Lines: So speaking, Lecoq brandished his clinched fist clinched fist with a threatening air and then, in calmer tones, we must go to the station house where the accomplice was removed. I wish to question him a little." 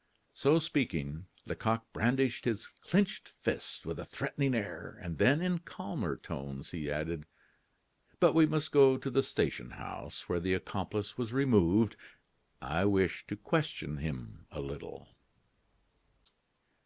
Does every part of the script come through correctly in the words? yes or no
no